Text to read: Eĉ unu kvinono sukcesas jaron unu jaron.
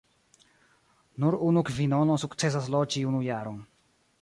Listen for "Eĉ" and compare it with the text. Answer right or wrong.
wrong